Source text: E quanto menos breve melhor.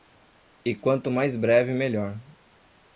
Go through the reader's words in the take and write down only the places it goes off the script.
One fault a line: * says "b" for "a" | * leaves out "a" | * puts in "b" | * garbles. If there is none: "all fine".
* says "mais" for "menos"